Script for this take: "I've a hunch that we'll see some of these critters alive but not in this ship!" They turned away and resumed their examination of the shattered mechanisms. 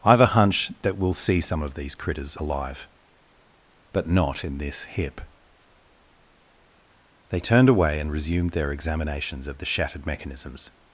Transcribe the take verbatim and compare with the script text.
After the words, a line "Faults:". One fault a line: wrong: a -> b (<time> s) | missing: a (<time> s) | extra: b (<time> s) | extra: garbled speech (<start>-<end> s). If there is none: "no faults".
"I've a hunch that we'll see some of these critters alive but not in this hip!" They turned away and resumed their examinations of the shattered mechanisms.
Faults:
wrong: ship -> hip (4.8 s)
wrong: examination -> examinations (8.7 s)